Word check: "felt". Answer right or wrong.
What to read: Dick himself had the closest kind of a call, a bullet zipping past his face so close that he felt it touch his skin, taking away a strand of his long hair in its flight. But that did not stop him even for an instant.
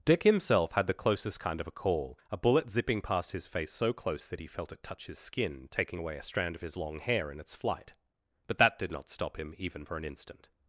right